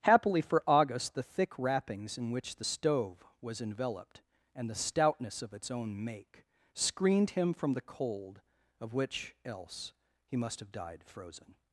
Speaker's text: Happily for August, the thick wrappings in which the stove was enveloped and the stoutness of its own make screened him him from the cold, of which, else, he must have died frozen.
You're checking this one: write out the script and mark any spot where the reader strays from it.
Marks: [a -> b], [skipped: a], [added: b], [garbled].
Happily for August, the thick wrappings in which the stove was enveloped and the stoutness of its own make screened him [skipped: him] from the cold, of which, else, he must have died frozen.